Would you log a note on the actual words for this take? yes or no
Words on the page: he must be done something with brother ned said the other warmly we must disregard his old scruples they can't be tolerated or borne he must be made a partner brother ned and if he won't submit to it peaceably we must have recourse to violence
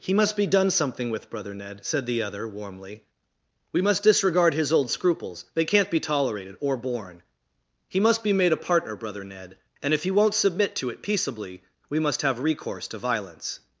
no